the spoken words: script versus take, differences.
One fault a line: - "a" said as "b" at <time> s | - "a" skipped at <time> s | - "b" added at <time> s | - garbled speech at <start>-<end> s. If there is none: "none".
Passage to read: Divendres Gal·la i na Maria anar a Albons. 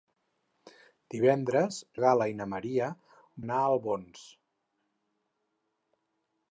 none